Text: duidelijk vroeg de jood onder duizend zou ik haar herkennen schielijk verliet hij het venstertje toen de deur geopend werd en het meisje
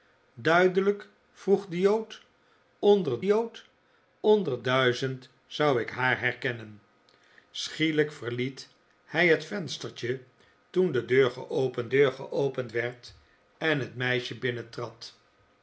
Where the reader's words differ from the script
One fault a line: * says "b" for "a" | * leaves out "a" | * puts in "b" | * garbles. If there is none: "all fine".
* puts in "jood onder"
* puts in "deur geopend"